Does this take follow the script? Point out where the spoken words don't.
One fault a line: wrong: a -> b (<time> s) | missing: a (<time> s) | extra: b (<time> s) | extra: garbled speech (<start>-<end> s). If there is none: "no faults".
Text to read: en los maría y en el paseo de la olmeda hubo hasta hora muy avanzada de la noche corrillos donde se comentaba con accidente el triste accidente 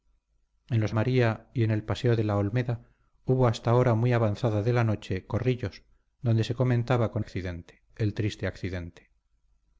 no faults